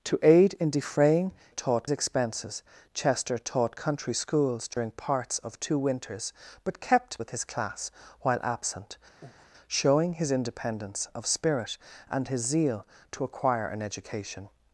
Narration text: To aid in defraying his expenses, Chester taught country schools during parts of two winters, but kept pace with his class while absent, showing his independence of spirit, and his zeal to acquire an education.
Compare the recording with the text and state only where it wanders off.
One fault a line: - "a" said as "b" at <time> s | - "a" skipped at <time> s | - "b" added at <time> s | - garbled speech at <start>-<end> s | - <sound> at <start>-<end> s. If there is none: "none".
- "his" said as "taught" at 1.5 s
- dropout at 4.7-4.8 s
- "pace" skipped at 7.2 s
- breath at 9.2-9.5 s